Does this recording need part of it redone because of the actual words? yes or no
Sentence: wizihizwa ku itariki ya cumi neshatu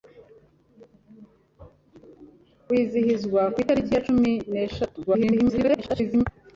yes